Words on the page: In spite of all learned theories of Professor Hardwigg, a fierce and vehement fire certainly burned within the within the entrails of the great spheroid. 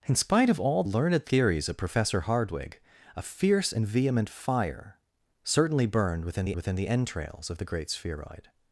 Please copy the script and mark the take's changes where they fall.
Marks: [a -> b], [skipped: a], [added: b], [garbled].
In spite of all learned theories of Professor Hardwigg, a fierce and vehement fire certainly burned within the within the entrails of the great spheroid.